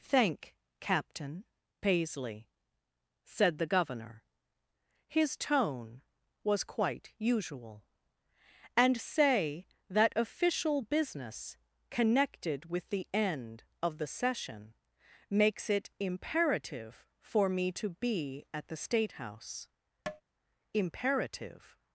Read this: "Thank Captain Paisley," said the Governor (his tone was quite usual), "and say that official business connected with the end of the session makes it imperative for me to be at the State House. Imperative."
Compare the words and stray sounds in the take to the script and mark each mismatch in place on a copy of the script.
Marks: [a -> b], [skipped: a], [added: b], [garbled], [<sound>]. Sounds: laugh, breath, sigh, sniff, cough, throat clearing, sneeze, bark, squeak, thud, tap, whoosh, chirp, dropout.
"Thank Captain Paisley," said the Governor (his tone was quite usual), "and say that official business connected with the end of the session makes it imperative for me to be at the State House. [tap] Imperative."